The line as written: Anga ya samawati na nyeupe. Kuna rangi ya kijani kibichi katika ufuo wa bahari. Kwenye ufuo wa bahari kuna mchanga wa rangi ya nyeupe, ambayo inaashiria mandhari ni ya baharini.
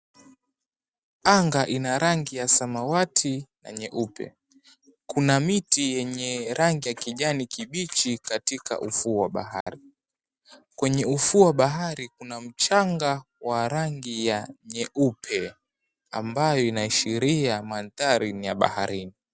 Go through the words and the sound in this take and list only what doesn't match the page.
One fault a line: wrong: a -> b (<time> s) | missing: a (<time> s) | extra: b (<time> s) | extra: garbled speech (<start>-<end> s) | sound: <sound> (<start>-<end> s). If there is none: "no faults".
extra: ina rangi (1.7 s)
extra: miti yenye (5.4 s)
sound: dropout (9.6-9.7 s)